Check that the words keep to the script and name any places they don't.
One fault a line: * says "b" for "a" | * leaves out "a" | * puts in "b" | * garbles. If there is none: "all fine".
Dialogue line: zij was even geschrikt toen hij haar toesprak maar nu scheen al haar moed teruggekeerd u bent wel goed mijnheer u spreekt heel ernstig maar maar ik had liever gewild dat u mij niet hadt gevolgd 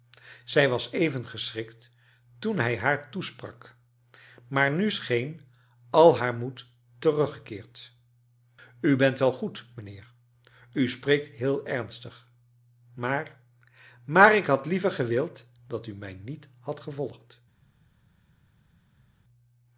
all fine